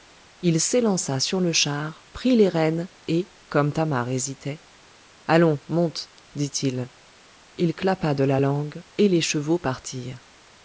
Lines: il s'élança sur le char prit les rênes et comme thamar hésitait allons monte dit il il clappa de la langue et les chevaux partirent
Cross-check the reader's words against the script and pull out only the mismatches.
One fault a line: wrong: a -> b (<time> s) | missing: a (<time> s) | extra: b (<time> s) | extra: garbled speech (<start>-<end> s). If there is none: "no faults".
no faults